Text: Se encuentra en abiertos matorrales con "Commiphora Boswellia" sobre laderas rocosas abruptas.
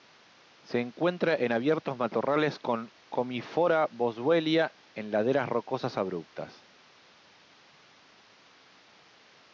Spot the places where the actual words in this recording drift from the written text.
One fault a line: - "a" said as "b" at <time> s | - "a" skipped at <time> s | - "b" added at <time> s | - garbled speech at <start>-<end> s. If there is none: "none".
- "sobre" said as "en" at 4.9 s